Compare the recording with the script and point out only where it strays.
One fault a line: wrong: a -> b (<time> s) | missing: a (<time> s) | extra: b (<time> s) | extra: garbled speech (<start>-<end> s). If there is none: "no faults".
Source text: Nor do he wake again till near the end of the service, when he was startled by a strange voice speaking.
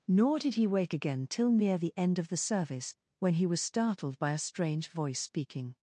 wrong: do -> did (0.4 s)